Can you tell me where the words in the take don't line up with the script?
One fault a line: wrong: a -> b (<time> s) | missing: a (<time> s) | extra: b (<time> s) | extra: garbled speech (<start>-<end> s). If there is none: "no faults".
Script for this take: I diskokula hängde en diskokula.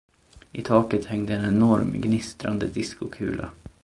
wrong: diskokula -> taket (0.6 s)
extra: enorm gnistrande (1.4 s)